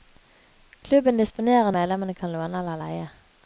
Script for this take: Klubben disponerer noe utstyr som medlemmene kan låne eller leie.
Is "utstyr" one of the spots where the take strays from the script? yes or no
yes